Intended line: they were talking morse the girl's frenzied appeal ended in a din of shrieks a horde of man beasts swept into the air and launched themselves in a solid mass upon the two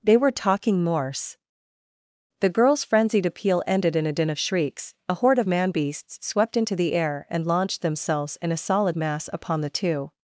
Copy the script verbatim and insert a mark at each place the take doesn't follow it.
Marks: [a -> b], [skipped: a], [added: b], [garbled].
they were talking morse the girl's frenzied appeal ended in a din of shrieks a horde of man beasts swept into the air and launched themselves in a solid mass upon the two